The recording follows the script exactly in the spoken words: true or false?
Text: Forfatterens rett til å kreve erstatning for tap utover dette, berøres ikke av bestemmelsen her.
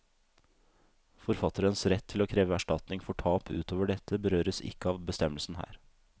true